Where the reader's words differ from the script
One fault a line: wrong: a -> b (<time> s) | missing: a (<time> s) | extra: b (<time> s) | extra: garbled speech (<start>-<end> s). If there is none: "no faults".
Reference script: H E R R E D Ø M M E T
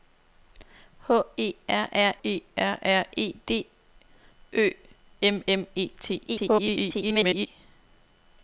extra: R R E (2.6 s)
extra: garbled speech (6.3-7.5 s)